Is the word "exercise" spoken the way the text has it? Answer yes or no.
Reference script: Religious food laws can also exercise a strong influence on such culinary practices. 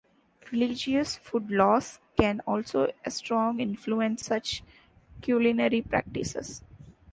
no